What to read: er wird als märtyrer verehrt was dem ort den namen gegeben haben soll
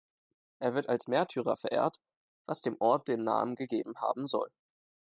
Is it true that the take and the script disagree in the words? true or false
false